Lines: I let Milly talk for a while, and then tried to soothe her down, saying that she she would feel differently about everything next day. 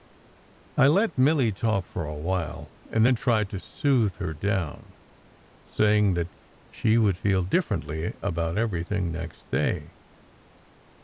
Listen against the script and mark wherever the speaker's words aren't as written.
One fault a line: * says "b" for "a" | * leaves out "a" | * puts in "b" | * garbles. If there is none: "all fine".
* leaves out "she"